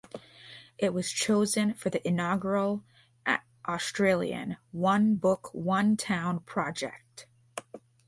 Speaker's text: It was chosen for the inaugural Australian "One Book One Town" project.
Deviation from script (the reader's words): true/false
false